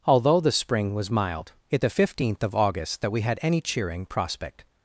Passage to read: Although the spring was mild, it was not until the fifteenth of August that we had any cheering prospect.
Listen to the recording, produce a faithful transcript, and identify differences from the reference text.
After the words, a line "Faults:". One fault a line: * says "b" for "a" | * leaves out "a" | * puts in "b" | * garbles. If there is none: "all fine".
Although the spring was mild, it the fifteenth of August that we had any cheering prospect.
Faults:
* leaves out "was not until"